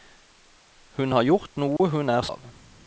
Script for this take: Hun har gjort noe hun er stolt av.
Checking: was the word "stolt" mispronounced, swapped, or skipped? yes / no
yes